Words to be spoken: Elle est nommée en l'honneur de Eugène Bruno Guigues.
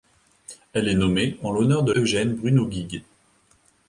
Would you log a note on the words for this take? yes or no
no